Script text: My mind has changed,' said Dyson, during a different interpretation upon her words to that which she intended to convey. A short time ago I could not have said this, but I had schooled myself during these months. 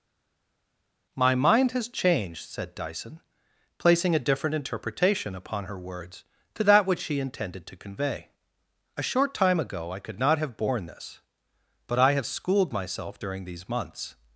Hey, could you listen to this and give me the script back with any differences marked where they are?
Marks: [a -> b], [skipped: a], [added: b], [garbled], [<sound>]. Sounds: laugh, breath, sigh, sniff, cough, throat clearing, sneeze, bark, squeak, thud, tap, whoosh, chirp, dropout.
My mind has changed,' said Dyson, [during -> placing] a different interpretation upon her words to that which she intended to convey. A short time ago I could not have [said -> borne] this, but I [had -> have] schooled myself during these months.